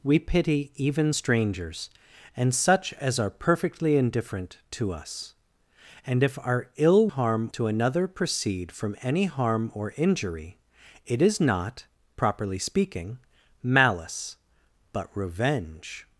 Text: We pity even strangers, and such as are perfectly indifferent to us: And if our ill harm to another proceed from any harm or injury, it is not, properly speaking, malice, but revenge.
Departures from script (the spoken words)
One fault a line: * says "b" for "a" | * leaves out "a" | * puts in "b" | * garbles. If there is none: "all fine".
all fine